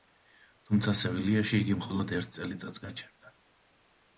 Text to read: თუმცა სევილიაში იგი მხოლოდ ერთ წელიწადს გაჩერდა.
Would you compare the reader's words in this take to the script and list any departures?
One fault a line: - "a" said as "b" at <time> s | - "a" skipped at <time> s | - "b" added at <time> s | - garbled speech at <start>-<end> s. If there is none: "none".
none